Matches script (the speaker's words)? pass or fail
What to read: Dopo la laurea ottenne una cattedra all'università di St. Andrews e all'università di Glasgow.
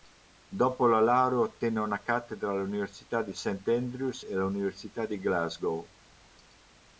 pass